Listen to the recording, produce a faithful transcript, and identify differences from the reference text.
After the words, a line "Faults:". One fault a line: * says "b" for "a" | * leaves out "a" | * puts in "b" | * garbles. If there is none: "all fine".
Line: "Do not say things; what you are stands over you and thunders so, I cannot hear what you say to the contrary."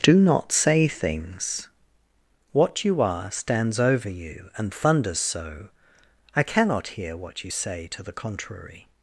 "Do not say things; what you are stands over you and thunders so, I cannot hear what you say to the contrary."
Faults:
all fine